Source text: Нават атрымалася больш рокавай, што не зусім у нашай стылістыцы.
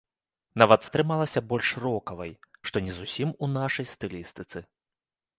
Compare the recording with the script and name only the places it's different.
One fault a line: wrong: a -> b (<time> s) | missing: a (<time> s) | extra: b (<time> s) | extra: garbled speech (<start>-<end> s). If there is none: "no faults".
no faults